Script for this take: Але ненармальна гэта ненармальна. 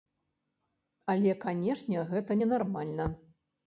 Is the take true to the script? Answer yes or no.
no